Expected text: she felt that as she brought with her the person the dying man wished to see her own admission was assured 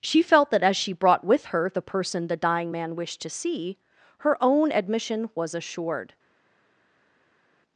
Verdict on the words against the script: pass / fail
pass